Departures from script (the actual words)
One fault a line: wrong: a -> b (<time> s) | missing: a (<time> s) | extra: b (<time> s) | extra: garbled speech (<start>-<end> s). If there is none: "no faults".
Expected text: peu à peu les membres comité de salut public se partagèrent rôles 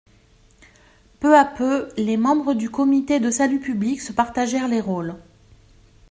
extra: du (2.5 s)
extra: les (4.7 s)